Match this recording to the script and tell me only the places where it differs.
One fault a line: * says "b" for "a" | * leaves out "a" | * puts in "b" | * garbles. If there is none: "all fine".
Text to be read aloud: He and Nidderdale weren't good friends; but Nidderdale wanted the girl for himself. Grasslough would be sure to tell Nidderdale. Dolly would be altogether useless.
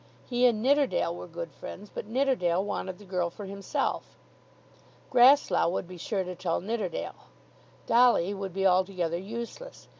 * says "were" for "weren't"